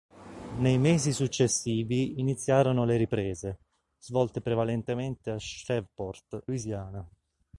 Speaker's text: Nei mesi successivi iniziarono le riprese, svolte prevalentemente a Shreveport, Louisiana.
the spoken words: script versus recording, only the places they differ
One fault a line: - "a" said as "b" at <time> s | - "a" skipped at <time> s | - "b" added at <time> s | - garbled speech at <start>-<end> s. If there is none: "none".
none